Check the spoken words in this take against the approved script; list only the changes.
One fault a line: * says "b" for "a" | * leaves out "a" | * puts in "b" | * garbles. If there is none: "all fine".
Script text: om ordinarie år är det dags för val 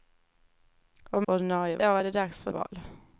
all fine